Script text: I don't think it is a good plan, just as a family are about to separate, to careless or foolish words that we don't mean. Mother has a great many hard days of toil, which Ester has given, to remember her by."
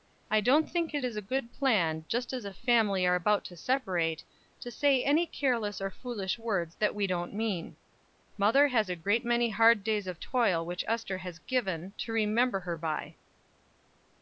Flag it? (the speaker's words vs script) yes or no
yes